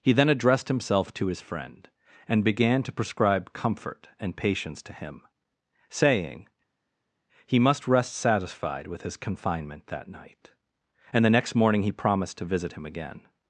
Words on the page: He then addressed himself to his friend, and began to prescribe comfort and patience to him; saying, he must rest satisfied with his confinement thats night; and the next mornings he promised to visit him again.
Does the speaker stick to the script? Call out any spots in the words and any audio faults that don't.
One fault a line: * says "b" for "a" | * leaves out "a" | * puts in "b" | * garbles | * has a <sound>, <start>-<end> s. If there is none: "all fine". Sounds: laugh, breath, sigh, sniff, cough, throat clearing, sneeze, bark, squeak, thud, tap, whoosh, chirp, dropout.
* says "that" for "thats"
* says "morning" for "mornings"